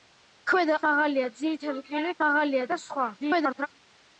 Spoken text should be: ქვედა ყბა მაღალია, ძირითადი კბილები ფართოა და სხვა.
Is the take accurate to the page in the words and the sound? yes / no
no